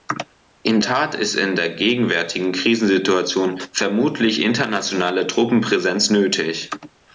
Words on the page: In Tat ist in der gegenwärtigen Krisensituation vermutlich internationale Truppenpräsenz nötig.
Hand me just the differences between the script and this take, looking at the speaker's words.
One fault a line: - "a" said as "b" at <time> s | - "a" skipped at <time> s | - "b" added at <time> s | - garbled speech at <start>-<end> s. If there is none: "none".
none